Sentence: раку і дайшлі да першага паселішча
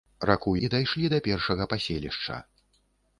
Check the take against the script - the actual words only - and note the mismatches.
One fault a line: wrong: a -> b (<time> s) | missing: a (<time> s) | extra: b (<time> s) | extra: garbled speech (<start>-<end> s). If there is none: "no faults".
no faults